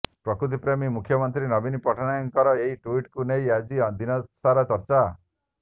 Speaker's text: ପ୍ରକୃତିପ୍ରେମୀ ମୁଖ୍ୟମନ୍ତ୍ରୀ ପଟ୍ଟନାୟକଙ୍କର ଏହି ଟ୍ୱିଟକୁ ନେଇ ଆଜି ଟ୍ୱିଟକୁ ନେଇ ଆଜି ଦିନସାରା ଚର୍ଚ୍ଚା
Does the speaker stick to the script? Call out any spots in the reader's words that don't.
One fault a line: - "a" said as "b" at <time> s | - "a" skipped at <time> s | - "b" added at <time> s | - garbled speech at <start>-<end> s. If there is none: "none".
- "ନବୀନ" added at 1.5 s
- "ଟ୍ୱିଟକୁ ନେଇ ଆଜି" skipped at 3.8 s